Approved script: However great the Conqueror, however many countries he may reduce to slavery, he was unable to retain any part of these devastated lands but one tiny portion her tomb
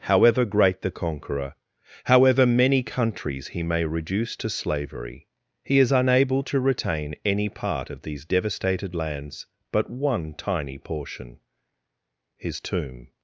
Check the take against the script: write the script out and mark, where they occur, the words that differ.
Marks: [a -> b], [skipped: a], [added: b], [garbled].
However great the Conqueror, however many countries he may reduce to slavery, he [was -> is] unable to retain any part of these devastated lands but one tiny portion [her -> his] tomb